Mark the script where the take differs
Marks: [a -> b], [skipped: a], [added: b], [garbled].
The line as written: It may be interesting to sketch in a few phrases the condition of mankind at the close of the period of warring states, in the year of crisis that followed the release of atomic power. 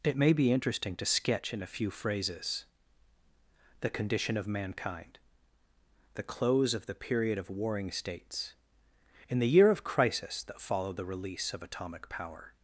It may be interesting to sketch in a few phrases the condition of mankind [skipped: at] the close of the period of warring states, in the year of crisis that followed the release of atomic power.